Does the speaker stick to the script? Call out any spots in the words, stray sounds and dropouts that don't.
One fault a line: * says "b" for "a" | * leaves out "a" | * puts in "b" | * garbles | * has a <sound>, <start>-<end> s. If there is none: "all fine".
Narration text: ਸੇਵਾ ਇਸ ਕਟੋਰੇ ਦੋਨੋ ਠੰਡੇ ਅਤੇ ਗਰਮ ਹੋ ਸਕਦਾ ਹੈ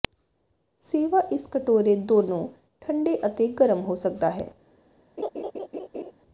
* has a laugh, 5.2-6.1 s